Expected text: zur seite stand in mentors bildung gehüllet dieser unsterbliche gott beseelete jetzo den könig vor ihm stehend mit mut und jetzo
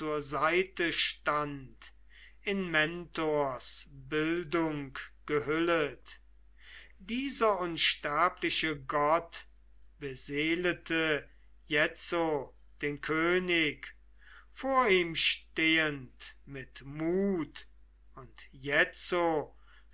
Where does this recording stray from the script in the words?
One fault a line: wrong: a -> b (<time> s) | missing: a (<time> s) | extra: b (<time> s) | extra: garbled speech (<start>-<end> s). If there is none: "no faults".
no faults